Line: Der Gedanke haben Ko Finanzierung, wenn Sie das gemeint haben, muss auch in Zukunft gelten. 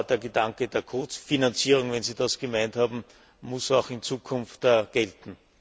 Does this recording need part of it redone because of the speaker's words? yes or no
yes